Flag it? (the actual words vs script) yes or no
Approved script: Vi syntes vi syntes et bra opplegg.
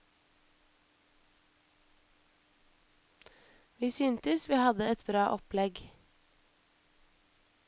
yes